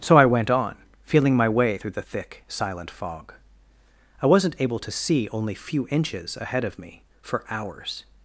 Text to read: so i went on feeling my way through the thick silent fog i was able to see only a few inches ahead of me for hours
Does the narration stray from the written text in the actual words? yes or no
yes